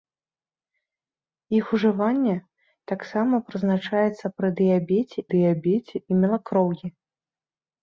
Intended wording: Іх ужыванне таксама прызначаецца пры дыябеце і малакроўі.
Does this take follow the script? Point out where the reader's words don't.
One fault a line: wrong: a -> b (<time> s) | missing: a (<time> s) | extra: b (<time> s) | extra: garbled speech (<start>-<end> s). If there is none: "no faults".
extra: дыябеце (5.4 s)